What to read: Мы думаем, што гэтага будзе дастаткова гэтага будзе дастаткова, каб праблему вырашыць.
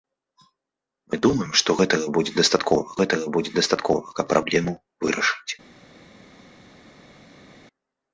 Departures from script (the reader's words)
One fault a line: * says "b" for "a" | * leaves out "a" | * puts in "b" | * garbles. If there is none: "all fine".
all fine